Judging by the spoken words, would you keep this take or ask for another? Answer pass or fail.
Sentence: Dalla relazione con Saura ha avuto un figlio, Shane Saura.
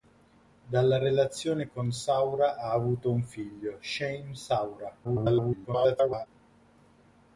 fail